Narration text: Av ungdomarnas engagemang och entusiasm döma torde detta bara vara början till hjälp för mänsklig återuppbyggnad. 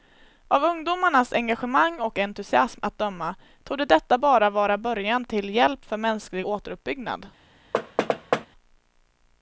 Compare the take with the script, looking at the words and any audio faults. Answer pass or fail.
fail